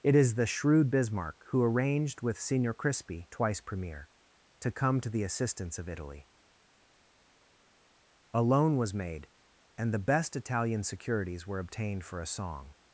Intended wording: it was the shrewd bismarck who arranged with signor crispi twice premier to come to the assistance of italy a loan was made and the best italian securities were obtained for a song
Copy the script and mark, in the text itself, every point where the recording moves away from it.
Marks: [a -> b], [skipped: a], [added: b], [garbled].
it [was -> is] the shrewd bismarck who arranged with signor crispi twice premier to come to the assistance of italy a loan was made and the best italian securities were obtained for a song